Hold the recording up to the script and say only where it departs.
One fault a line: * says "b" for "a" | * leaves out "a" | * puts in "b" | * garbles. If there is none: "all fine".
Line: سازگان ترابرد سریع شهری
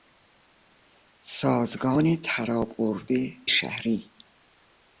* leaves out "سریع"